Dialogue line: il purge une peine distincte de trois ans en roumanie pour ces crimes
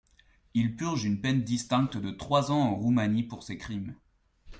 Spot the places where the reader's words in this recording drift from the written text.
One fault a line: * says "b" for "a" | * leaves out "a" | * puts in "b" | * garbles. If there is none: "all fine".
all fine